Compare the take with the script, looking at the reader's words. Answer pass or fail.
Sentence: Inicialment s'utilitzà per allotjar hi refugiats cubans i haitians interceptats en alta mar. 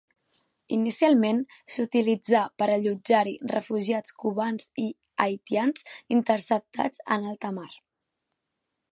pass